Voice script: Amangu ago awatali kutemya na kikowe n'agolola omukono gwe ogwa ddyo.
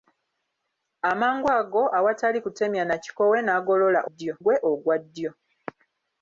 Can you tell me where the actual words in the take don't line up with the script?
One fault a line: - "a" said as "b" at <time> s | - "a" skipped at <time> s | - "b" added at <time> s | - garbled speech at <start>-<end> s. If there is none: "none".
- "omukono" said as "ddyo" at 4.1 s